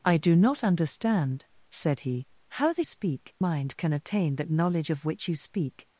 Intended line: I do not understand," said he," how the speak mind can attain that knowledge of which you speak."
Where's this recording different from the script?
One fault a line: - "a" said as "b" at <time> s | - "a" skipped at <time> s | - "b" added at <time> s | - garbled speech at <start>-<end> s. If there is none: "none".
none